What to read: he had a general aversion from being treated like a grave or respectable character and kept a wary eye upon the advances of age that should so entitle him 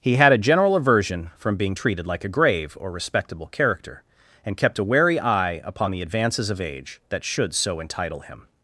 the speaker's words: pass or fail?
pass